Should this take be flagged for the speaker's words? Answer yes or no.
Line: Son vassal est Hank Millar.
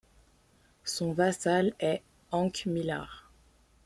no